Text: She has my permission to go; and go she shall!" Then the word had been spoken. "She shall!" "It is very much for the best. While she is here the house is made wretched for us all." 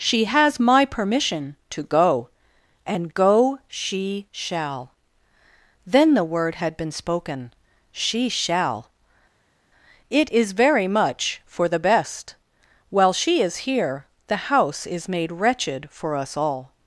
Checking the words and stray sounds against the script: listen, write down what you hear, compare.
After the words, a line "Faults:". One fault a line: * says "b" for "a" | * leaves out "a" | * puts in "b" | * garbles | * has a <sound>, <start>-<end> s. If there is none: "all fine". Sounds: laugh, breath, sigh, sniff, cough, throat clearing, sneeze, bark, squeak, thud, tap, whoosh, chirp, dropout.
She has my permission to go; and go she shall!" Then the word had been spoken. "She shall!" "It is very much for the best. While she is here the house is made wretched for us all."
Faults:
all fine